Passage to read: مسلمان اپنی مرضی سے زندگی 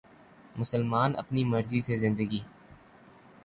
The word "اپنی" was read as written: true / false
true